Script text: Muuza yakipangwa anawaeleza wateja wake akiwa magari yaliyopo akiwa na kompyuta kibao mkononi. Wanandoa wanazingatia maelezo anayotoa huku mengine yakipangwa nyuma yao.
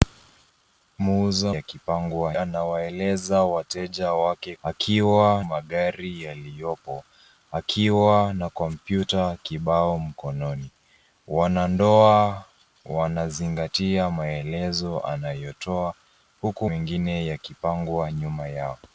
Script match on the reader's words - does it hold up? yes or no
yes